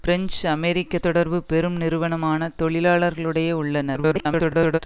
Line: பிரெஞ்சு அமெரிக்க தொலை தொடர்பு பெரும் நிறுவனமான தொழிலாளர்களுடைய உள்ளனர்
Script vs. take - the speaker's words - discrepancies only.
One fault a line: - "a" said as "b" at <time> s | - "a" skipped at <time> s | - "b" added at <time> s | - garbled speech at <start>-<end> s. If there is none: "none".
- "தொலை" skipped at 1.0 s
- garbled speech at 3.9-4.8 s